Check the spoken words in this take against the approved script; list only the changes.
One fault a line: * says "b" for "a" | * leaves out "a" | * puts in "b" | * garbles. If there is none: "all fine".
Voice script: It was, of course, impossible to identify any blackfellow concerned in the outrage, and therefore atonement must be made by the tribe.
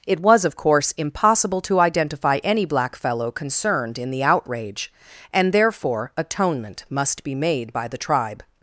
all fine